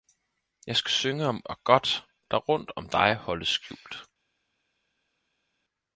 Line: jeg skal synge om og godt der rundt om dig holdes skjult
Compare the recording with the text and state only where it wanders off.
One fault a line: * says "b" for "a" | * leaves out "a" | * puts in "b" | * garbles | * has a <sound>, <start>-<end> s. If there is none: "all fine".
all fine